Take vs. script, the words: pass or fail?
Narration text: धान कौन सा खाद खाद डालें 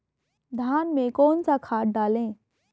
fail